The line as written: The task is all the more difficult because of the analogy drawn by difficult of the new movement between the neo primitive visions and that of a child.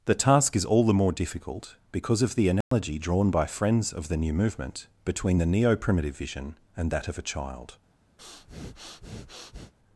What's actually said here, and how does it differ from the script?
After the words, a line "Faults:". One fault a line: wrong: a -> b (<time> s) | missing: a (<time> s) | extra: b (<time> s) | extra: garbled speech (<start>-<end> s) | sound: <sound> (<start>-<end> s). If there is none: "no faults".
The task is all the more difficult because of the analogy drawn by friends of the new movement between the neo primitive vision and that of a child.
Faults:
sound: dropout (2.6-2.7 s)
wrong: difficult -> friends (3.5 s)
wrong: visions -> vision (6.2 s)
sound: breath (8.2-9.7 s)